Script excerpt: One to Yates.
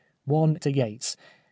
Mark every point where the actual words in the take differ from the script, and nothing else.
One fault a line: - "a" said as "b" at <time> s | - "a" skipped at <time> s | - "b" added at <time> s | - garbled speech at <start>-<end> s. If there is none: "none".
none